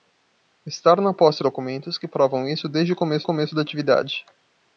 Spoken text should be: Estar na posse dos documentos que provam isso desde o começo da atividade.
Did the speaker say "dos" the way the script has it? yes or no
no